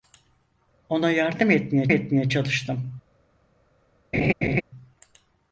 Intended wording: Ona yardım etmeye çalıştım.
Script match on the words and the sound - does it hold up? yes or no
no